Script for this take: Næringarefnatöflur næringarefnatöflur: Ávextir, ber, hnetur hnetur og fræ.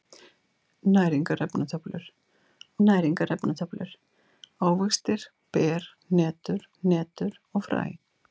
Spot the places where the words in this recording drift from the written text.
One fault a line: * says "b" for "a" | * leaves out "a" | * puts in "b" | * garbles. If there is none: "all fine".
all fine